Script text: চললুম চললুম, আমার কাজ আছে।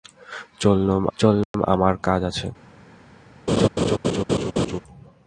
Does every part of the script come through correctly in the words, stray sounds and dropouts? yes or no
no